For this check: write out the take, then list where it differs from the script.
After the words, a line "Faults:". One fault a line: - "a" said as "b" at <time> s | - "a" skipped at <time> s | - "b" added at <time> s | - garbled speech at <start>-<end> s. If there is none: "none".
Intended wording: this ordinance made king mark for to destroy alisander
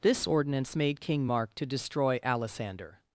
this ordinance made king mark to destroy alisander
Faults:
- "for" skipped at 1.5 s